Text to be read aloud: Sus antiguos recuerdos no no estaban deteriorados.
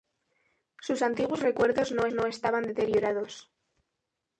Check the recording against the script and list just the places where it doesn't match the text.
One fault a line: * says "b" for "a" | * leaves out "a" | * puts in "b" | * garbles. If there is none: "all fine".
all fine